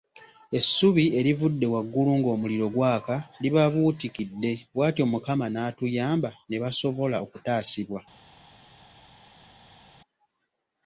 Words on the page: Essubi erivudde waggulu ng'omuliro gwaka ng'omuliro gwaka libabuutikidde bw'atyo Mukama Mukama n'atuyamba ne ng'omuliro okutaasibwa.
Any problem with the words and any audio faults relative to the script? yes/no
yes